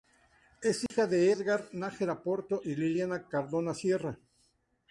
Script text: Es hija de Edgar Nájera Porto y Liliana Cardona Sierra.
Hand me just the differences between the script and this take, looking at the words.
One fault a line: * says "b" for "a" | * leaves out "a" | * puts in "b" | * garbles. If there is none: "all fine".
all fine